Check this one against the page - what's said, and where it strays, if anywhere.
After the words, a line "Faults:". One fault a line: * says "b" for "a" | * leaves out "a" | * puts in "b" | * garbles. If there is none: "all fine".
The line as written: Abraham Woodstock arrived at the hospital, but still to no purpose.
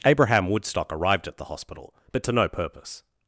Abraham Woodstock arrived at the hospital, but to no purpose.
Faults:
* leaves out "still"